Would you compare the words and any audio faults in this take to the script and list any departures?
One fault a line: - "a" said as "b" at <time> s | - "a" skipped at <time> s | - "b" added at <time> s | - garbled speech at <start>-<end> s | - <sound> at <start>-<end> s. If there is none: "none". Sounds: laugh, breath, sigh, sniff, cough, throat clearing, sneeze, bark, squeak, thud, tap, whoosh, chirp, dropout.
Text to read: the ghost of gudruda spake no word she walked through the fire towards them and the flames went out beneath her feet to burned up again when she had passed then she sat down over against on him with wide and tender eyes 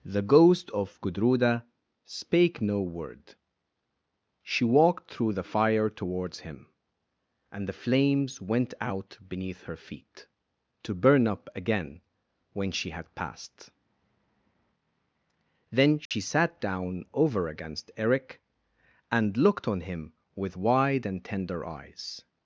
- "them" said as "him" at 6.4 s
- "burned" said as "burn" at 10.9 s
- dropout at 16.1-16.1 s
- "eric and looked" added at 17.9 s